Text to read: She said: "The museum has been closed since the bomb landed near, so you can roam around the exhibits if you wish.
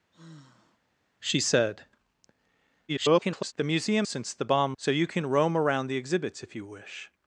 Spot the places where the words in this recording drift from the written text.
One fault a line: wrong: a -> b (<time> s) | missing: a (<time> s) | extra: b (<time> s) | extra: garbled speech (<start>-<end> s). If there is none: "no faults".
extra: garbled speech (2.9-3.5 s)
missing: has been closed (4.1 s)
missing: landed near (4.7 s)